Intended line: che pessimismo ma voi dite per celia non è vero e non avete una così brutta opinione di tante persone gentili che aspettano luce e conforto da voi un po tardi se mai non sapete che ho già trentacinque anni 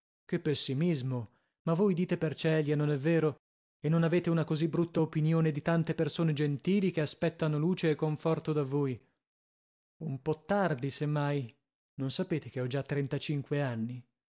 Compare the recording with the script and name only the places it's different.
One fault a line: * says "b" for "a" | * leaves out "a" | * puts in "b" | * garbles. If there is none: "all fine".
all fine